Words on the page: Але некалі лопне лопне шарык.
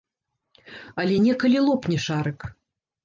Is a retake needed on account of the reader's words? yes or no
yes